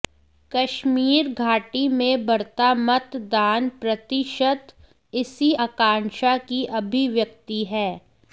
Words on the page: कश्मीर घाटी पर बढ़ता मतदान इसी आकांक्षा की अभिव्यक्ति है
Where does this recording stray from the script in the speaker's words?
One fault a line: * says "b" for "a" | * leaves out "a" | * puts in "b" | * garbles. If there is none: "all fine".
* says "में" for "पर"
* puts in "प्रतिशत"